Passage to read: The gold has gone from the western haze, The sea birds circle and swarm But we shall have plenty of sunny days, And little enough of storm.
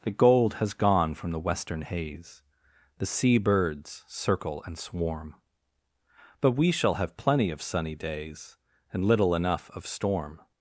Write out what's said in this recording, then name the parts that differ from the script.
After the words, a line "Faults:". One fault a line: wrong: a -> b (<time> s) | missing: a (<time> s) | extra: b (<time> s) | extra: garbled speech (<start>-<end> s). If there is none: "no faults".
The gold has gone from the western haze, The sea birds circle and swarm But we shall have plenty of sunny days, And little enough of storm.
Faults:
no faults